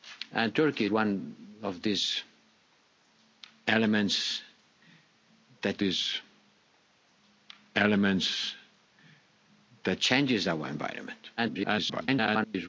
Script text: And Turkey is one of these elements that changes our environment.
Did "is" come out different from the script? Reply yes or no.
yes